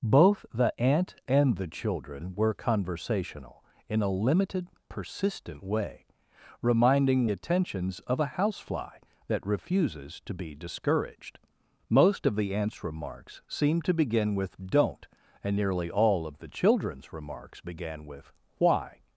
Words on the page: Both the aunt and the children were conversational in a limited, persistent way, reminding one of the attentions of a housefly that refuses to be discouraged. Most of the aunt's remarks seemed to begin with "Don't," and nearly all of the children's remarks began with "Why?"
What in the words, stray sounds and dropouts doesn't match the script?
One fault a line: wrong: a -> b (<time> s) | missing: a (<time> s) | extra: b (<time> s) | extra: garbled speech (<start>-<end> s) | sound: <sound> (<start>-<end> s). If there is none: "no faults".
missing: one of the (7.3 s)